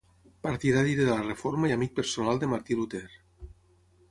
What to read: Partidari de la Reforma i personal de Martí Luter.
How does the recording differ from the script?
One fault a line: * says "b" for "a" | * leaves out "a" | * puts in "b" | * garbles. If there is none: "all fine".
* puts in "amic"